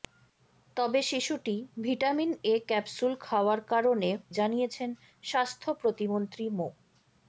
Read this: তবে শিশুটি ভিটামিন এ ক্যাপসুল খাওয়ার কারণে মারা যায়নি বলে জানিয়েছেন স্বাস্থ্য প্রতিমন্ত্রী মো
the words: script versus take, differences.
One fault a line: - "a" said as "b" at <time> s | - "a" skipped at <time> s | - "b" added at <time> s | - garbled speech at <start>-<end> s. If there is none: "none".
- "মারা যায়নি বলে" skipped at 4.1 s